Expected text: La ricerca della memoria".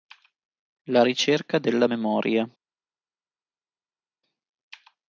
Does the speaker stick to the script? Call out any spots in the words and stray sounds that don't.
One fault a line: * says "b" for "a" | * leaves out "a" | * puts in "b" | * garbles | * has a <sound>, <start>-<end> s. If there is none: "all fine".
all fine